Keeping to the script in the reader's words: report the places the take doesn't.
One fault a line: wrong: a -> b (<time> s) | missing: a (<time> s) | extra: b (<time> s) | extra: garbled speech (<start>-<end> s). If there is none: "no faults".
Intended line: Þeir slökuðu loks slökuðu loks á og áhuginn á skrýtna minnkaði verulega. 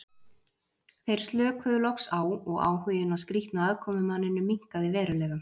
missing: slökuðu loks (2.1 s)
extra: aðkomumanninum (3.7 s)